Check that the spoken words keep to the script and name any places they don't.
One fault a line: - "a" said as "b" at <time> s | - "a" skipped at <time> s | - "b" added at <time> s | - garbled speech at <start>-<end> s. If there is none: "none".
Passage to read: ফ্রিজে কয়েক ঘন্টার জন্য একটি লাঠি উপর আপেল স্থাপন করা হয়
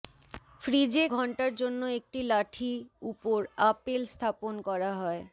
- "কয়েক" skipped at 1.1 s